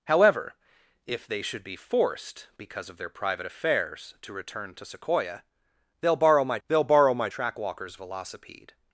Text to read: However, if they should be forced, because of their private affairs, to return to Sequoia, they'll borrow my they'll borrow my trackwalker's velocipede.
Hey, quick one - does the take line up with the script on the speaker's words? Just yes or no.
yes